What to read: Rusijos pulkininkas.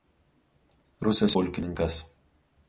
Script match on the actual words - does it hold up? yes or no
yes